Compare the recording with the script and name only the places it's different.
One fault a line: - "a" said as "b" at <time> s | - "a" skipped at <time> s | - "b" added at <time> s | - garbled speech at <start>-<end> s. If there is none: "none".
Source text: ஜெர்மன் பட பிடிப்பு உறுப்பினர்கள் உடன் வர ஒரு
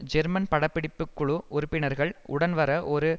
- "குழு" added at 1.1 s